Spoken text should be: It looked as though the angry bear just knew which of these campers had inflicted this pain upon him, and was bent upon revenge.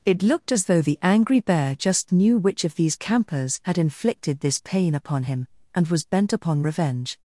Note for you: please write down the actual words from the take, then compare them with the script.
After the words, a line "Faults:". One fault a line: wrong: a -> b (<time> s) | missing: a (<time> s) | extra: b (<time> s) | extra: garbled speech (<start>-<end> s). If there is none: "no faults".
It looked as though the angry bear just knew which of these campers had inflicted this pain upon him, and was bent upon revenge.
Faults:
no faults